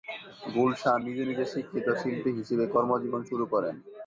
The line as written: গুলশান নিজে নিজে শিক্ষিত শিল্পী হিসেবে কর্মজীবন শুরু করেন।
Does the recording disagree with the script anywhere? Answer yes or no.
no